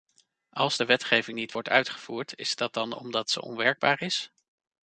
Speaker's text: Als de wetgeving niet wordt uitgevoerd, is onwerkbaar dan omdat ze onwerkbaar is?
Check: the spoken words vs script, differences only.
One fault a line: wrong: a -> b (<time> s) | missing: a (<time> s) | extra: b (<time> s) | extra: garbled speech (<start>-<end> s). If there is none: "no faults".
wrong: onwerkbaar -> dat (2.6 s)